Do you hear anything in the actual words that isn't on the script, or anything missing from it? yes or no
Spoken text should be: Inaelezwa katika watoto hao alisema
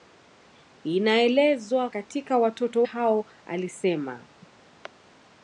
no